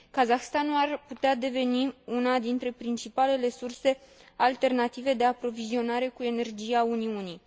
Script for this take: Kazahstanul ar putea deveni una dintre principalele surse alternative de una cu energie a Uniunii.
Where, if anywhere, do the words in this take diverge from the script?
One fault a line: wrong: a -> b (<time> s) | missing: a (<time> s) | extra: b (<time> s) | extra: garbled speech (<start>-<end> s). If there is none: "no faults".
wrong: una -> aprovizionare (5.2 s)